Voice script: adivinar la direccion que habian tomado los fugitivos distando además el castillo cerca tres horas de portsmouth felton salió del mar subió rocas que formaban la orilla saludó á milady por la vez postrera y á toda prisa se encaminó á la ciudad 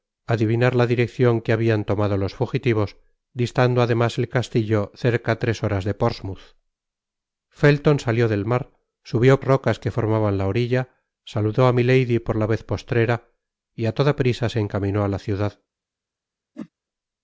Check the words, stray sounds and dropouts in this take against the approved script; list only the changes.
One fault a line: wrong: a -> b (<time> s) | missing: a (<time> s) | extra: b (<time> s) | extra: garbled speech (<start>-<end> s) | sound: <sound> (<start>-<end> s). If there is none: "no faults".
sound: whoosh (16.5-16.7 s)